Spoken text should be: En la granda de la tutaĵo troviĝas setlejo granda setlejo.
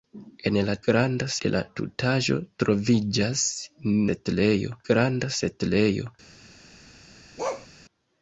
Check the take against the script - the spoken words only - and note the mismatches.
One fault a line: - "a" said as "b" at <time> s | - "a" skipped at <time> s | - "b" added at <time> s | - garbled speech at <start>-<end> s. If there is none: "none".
none